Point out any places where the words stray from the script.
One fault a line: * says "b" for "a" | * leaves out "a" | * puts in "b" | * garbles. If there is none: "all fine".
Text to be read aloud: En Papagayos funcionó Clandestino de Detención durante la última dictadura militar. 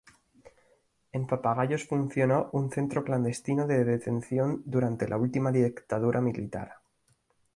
* puts in "un Centro"